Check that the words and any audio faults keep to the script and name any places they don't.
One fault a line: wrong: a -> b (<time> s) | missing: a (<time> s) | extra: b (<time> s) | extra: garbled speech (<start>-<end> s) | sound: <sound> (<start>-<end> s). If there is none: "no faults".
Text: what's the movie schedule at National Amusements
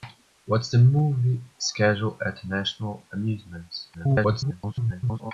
extra: garbled speech (3.9-5.3 s)